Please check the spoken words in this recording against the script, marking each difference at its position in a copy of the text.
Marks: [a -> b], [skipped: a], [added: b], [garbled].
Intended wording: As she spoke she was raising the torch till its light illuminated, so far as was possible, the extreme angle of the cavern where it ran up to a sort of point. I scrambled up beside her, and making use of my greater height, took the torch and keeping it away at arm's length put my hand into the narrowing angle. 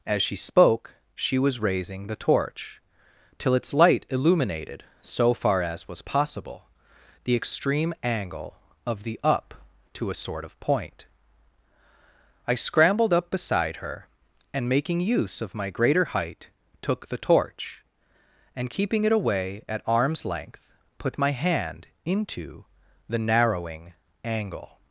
As she spoke she was raising the torch till its light illuminated, so far as was possible, the extreme angle of the [skipped: cavern where it ran] up to a sort of point. I scrambled up beside her, and making use of my greater height, took the torch and keeping it away at arm's length put my hand into the narrowing angle.